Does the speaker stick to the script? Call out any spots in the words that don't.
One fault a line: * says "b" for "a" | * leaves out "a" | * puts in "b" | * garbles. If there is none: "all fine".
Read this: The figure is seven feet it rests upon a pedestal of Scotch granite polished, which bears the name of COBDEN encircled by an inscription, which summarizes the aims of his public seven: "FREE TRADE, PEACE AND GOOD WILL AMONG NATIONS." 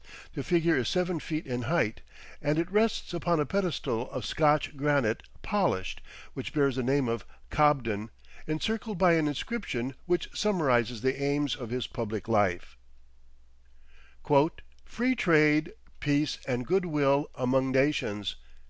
* puts in "in height and"
* says "life" for "seven"